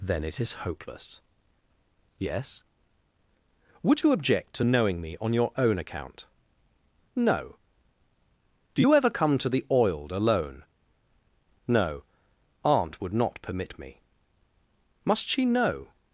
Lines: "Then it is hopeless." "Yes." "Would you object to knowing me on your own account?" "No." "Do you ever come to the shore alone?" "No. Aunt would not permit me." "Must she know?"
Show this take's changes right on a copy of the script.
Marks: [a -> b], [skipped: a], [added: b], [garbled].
"Then it is hopeless." "Yes." "Would you object to knowing me on your own account?" "No." "Do you ever come to the [shore -> oiled] alone?" "No. Aunt would not permit me." "Must she know?"